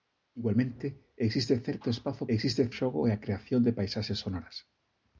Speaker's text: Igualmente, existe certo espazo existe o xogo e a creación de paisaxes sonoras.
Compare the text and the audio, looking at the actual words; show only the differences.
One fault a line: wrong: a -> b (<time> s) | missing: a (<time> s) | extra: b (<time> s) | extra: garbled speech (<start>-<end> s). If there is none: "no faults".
no faults